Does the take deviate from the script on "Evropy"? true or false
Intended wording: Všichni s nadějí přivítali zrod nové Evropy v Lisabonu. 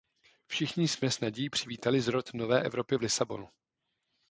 false